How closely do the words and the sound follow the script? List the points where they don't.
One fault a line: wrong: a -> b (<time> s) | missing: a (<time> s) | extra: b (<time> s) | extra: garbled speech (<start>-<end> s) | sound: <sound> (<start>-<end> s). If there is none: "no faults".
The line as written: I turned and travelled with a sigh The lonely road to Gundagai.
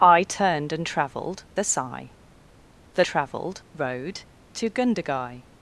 missing: with (1.4 s)
wrong: lonely -> travelled (3.0 s)